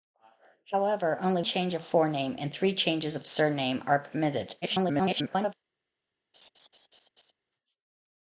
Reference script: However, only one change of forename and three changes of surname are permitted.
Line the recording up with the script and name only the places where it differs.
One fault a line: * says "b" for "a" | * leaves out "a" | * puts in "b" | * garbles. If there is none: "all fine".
* leaves out "one"
* garbles